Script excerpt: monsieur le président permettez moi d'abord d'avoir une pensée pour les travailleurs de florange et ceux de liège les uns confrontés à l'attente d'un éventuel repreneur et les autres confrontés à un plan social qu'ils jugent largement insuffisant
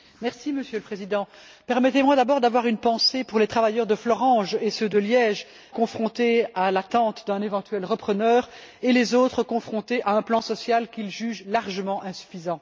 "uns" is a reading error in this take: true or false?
true